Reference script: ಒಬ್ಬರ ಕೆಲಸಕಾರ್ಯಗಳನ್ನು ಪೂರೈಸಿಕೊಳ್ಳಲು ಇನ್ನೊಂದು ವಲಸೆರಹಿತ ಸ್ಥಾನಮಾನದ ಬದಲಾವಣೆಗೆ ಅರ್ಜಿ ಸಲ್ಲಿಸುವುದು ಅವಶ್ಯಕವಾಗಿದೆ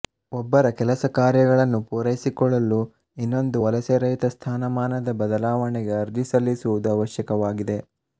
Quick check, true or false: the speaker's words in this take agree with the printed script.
true